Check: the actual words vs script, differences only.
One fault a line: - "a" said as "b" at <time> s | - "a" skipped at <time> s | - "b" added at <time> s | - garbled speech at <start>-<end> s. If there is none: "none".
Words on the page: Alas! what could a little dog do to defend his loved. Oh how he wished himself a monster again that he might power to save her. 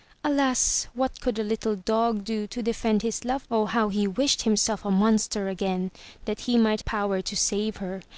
none